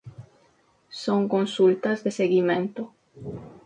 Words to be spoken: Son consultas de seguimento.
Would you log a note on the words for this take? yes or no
no